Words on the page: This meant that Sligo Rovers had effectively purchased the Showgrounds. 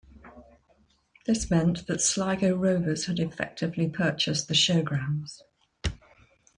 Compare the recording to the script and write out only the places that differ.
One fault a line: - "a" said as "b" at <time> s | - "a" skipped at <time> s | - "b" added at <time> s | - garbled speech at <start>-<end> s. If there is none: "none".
none